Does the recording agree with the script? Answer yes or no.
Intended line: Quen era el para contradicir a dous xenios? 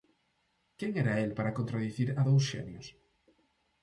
yes